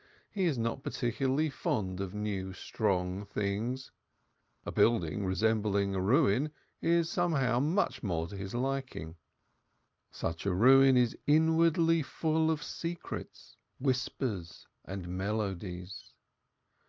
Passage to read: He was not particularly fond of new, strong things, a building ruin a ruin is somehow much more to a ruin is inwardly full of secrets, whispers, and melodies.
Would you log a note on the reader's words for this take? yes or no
yes